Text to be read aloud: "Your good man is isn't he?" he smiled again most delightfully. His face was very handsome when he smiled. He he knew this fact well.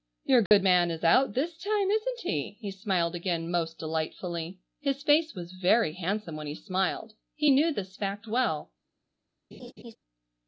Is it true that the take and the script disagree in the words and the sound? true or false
true